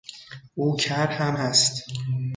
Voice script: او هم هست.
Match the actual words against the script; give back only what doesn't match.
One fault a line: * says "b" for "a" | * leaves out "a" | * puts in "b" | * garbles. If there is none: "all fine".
* puts in "کر"